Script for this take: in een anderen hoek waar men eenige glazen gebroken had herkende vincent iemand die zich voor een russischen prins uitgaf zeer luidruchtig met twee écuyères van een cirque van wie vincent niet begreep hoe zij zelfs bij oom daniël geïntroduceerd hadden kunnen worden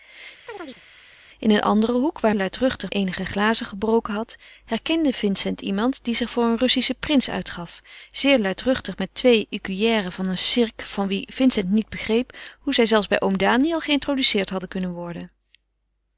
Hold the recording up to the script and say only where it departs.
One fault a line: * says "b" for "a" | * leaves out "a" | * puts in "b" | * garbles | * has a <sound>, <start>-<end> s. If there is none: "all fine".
* has a chirp, 0.5-0.8 s
* says "luidruchtig" for "men"